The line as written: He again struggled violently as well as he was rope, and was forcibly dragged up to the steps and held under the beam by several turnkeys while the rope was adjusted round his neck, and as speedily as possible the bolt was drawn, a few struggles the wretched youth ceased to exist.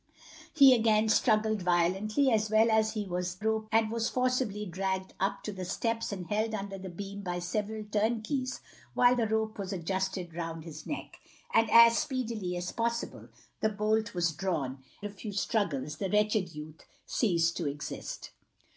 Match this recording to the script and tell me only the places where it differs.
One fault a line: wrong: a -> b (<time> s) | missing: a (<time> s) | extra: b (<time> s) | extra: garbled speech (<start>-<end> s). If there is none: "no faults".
no faults